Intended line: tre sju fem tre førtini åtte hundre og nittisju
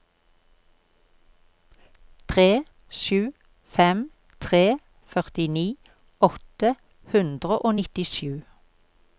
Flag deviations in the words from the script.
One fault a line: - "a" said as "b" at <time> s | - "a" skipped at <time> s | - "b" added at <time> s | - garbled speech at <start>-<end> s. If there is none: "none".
none